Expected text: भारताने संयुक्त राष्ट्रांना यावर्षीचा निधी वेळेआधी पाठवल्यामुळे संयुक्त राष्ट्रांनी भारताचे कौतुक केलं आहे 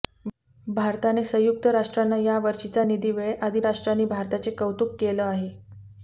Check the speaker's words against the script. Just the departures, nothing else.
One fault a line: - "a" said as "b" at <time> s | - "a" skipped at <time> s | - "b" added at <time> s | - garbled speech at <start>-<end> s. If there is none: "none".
- "पाठवल्यामुळे संयुक्त" skipped at 3.6 s